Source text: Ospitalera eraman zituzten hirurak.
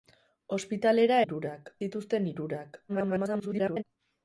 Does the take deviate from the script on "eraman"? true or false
true